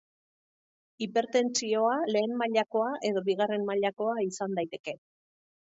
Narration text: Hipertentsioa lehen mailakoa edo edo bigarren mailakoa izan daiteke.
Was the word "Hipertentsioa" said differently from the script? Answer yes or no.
no